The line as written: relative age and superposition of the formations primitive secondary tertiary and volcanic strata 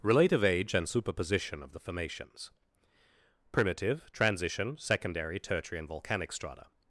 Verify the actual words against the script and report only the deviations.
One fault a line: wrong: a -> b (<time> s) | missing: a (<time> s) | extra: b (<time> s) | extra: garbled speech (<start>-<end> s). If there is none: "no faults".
extra: transition (4.1 s)